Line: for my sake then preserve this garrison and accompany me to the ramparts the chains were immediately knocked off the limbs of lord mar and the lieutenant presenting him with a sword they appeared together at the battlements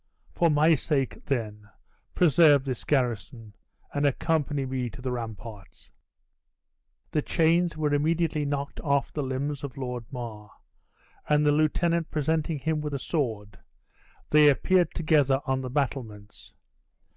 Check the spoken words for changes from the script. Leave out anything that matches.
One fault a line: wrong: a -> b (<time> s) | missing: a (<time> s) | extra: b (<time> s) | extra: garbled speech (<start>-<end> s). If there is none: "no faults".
wrong: at -> on (15.4 s)